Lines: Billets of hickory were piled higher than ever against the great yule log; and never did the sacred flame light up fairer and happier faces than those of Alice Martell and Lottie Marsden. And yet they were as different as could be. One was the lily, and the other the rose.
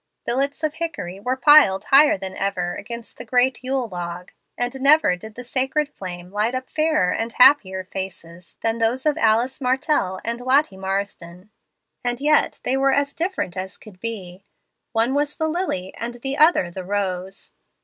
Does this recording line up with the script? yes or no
yes